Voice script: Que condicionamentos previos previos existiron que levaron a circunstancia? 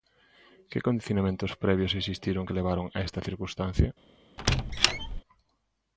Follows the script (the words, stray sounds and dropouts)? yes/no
no